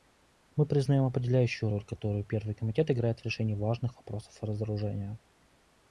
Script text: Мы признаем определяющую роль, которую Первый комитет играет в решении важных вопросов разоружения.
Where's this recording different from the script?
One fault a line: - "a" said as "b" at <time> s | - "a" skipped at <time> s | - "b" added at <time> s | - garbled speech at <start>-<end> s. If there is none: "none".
none